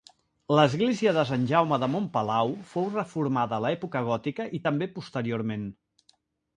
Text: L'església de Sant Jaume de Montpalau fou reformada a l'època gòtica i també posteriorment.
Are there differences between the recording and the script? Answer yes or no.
no